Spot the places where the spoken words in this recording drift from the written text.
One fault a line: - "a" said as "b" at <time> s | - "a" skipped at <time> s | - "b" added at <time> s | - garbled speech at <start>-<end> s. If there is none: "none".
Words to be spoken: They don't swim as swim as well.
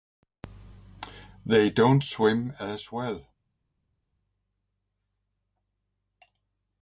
- "swim as" skipped at 2.9 s